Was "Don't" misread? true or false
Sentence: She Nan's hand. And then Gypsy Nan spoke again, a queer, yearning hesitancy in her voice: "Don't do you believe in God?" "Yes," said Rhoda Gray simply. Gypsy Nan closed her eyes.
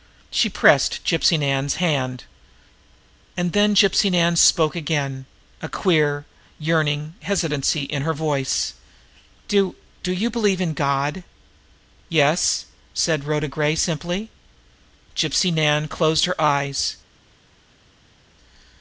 true